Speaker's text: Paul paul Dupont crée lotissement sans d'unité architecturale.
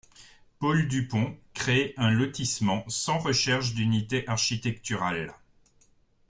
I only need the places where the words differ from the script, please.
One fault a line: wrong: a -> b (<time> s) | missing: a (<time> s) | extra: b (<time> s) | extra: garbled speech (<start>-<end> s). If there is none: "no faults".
missing: paul (0.9 s)
extra: un (1.9 s)
extra: recherche (3.2 s)